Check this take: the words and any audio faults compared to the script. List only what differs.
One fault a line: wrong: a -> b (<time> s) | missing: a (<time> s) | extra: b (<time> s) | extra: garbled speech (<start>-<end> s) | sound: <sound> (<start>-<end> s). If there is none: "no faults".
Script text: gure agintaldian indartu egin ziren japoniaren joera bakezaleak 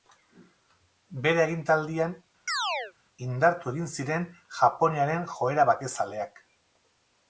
wrong: gure -> bere (1.2 s)
sound: chirp (2.5-2.9 s)